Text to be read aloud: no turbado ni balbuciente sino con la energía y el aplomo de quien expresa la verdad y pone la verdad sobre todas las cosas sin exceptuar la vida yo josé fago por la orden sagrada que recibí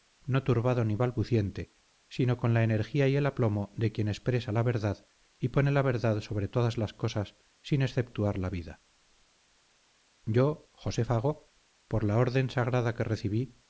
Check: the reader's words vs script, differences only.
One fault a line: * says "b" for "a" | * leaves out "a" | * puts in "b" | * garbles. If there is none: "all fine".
all fine